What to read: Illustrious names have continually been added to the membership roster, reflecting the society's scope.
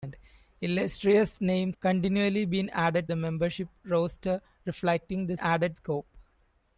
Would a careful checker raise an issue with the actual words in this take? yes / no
yes